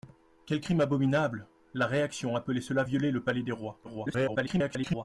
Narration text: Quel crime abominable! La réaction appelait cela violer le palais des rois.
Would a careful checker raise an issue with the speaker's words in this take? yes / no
yes